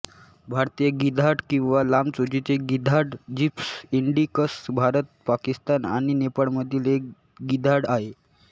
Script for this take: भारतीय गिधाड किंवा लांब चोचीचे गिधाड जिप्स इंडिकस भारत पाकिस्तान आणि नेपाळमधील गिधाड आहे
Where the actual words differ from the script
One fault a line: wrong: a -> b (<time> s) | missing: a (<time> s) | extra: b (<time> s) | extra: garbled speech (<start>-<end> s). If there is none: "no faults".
extra: एक (6.9 s)